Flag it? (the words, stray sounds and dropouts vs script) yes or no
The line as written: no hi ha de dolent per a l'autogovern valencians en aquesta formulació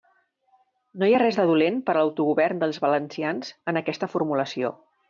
yes